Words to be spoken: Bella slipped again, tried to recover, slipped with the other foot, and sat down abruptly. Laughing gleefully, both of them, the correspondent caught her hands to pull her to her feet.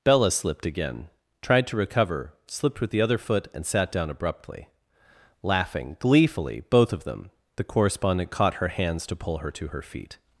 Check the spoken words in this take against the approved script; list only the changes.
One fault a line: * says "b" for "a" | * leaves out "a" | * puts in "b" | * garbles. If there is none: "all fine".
all fine